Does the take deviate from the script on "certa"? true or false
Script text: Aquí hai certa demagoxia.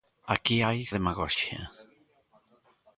true